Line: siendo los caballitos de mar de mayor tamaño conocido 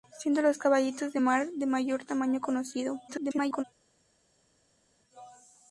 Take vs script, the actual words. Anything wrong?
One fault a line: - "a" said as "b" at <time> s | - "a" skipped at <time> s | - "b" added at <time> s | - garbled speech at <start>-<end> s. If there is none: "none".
- garbled speech at 3.1-3.6 s